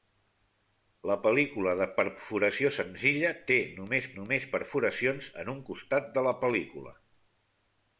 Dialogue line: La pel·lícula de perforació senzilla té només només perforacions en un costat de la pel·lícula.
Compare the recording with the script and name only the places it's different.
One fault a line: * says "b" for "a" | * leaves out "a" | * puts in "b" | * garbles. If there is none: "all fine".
all fine